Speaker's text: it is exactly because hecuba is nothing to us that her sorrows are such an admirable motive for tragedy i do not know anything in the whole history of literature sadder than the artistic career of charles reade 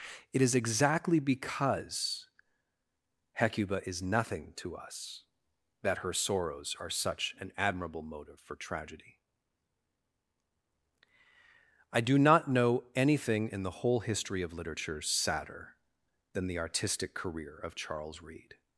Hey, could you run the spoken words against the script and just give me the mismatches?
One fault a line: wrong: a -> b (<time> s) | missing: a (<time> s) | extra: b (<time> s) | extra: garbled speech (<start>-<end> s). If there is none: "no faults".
no faults